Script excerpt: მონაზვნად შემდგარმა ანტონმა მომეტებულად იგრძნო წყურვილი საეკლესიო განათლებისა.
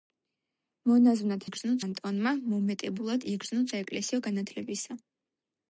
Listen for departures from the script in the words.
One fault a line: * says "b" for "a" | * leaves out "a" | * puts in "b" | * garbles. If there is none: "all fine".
* says "იგრძნო" for "შემდგარმა"
* leaves out "წყურვილი"